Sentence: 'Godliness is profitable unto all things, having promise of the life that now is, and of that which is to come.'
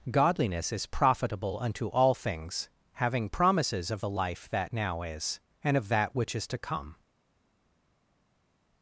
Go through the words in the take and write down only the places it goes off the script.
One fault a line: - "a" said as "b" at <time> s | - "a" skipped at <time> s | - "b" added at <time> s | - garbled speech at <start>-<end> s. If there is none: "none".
- "promise" said as "promises" at 3.3 s